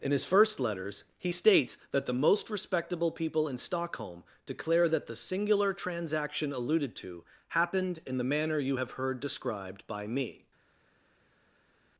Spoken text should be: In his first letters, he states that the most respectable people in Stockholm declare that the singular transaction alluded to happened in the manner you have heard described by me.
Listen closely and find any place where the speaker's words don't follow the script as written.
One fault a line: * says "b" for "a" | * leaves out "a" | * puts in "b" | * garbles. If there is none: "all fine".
all fine